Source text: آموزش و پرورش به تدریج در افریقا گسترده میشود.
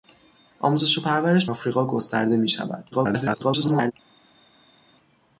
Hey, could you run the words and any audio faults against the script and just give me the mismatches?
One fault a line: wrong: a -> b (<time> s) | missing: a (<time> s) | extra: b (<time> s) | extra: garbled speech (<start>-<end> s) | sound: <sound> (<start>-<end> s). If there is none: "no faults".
missing: به تدریج در (1.4 s)
extra: garbled speech (2.9-3.9 s)